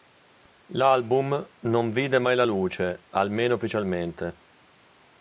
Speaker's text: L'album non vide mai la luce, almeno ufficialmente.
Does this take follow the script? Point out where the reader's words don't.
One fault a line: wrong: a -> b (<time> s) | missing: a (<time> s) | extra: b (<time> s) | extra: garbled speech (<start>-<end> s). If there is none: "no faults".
no faults